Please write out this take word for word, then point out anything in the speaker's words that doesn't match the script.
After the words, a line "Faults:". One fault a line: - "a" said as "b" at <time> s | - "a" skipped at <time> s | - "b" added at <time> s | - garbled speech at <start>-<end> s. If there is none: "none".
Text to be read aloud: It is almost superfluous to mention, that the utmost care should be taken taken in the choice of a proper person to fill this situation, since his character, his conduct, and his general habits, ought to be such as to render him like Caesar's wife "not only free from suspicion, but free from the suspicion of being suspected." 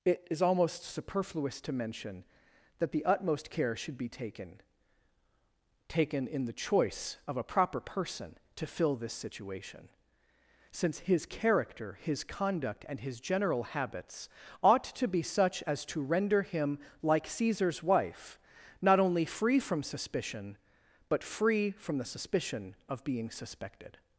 It is almost superfluous to mention, that the utmost care should be taken taken in the choice of a proper person to fill this situation, since his character, his conduct, and his general habits, ought to be such as to render him like Caesar's wife "not only free from suspicion, but free from the suspicion of being suspected."
Faults:
none